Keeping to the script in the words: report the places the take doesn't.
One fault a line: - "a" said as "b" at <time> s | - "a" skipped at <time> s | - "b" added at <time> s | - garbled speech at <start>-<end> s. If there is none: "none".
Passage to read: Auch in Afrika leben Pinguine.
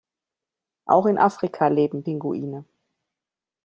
none